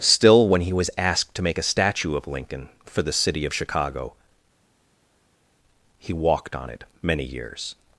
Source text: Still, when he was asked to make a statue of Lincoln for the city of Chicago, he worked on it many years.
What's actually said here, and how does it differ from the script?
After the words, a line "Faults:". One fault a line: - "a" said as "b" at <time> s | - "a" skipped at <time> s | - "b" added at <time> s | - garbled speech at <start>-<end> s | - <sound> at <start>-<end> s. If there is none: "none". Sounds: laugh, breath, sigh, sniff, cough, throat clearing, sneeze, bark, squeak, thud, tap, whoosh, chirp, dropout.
Still, when he was asked to make a statue of Lincoln for the city of Chicago, he walked on it many years.
Faults:
- "worked" said as "walked" at 6.1 s